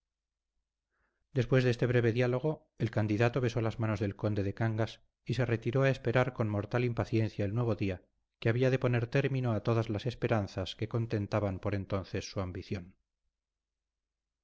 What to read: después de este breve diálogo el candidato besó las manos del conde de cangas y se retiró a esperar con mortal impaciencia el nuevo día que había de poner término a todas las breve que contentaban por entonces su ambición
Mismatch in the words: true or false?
true